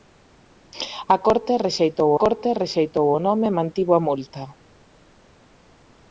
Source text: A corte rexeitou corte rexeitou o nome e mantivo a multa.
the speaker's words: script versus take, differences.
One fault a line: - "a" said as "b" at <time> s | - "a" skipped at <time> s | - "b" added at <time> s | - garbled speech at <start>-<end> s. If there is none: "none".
none